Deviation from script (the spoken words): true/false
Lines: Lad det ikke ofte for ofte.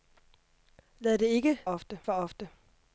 false